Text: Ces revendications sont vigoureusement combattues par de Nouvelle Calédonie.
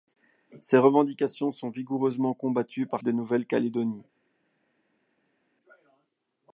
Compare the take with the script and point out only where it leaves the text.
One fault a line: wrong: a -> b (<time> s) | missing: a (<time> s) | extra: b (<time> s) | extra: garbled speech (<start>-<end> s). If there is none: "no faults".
no faults